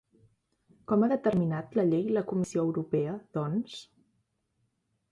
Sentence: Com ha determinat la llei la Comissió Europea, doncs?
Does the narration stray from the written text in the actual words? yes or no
no